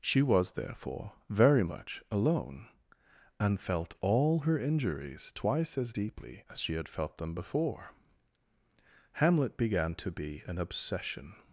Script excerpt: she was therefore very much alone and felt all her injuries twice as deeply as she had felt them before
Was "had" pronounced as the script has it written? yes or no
yes